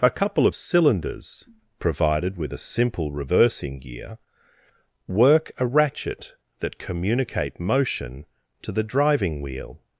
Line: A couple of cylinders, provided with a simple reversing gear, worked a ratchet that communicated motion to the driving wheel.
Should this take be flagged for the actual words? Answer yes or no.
yes